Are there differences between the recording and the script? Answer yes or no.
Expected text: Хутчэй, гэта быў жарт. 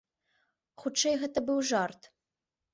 no